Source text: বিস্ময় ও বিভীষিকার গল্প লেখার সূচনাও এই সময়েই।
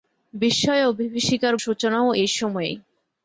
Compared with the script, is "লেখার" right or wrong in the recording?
wrong